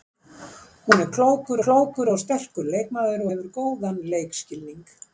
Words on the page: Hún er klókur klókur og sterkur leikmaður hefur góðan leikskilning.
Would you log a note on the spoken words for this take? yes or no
no